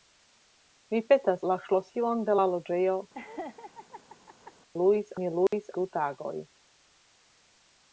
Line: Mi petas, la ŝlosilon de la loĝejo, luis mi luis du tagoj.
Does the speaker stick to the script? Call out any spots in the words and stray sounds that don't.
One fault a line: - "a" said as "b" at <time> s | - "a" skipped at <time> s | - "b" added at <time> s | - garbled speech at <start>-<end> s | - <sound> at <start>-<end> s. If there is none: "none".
- laugh at 3.1-4.5 s
- dropout at 5.5-5.5 s